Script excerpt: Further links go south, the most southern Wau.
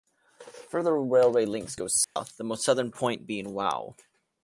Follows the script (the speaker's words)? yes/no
no